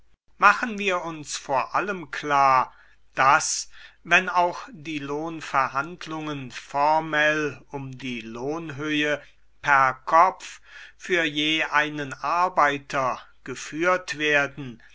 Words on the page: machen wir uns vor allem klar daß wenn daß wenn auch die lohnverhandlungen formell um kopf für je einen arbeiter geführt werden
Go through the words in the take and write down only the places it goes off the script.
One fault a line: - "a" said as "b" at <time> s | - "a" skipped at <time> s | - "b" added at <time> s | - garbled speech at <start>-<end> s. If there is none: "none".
- "daß wenn" skipped at 4.3 s
- "die lohnhöhe per" added at 8.0 s